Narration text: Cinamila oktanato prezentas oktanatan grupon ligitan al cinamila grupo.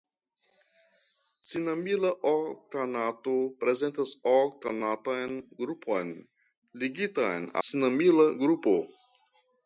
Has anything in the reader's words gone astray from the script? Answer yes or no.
yes